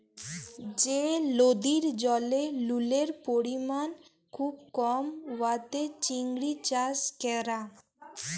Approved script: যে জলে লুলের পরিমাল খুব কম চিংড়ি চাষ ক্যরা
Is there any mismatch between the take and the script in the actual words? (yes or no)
yes